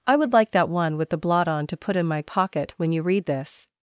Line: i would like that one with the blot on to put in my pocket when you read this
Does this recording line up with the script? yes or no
yes